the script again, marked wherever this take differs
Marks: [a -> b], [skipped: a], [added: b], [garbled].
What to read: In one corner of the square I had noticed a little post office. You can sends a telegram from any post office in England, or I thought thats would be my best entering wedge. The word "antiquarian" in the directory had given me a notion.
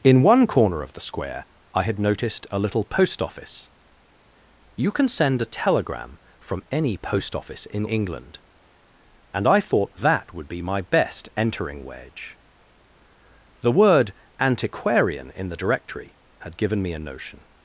In one corner of the square I had noticed a little post office. You can [sends -> send] a telegram from any post office in England, [or -> and] I thought [thats -> that] would be my best entering wedge. The word "antiquarian" in the directory had given me a notion.